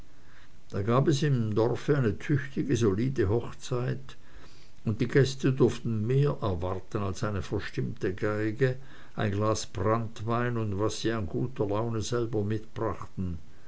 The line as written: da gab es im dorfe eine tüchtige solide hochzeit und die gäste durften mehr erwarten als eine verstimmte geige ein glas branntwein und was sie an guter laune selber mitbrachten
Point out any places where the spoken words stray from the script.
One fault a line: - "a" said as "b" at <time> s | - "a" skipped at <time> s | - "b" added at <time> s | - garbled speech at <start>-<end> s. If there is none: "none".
none